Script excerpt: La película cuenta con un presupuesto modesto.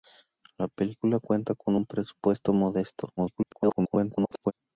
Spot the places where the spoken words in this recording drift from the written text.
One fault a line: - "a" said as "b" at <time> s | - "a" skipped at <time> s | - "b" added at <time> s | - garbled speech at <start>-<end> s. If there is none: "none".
- garbled speech at 3.2-4.5 s